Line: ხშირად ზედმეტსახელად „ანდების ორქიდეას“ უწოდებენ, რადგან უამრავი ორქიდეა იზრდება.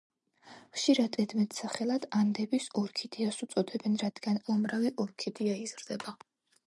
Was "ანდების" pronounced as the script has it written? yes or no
yes